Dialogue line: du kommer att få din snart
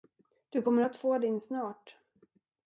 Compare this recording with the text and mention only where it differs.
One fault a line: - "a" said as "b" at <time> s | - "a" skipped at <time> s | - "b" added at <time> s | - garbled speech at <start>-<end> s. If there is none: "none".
none